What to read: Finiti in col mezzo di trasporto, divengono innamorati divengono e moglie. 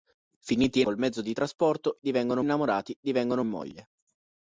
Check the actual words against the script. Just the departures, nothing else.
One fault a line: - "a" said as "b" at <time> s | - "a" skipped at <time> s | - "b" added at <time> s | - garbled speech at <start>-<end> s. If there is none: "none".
none